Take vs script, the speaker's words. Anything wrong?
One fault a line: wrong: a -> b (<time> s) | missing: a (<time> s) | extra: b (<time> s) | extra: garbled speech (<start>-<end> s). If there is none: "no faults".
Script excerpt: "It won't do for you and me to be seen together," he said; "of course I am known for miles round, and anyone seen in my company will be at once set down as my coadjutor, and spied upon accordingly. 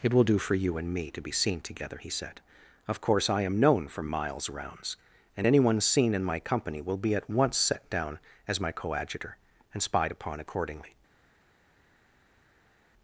wrong: won't -> will (0.1 s)
wrong: round -> rounds (4.5 s)